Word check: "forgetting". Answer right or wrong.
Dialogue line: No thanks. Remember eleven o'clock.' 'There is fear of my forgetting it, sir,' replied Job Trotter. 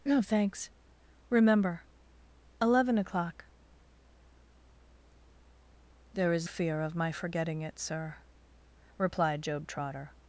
right